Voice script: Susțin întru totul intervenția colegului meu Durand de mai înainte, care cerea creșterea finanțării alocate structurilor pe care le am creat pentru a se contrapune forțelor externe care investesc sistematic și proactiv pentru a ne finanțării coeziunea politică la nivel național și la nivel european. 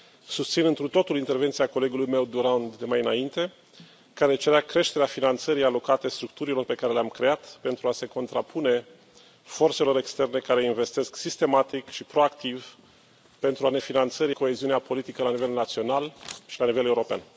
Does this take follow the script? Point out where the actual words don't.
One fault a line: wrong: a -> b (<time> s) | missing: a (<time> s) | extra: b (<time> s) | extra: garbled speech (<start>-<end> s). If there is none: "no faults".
no faults